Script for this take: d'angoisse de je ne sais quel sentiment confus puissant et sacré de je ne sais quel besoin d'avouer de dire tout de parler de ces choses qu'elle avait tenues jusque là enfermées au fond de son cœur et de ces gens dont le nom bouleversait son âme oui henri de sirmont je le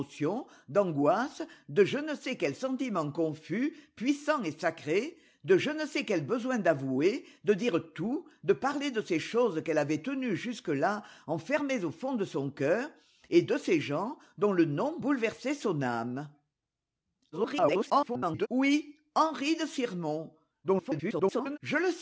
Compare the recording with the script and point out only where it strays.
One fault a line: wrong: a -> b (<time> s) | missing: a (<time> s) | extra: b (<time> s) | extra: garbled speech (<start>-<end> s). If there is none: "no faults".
extra: garbled speech (17.3-18.5 s)
extra: garbled speech (20.6-21.6 s)